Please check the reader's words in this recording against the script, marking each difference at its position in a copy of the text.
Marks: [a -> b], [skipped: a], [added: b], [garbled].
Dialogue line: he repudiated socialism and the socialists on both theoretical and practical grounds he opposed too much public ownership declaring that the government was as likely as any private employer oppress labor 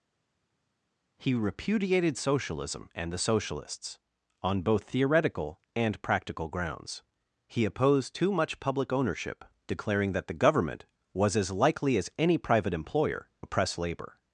he repudiated socialism and the socialists on both theoretical and practical grounds he opposed too much public ownership declaring that the government was as likely as any private employer oppress labor